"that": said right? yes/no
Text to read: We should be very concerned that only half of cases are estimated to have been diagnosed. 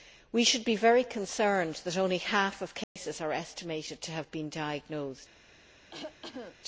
yes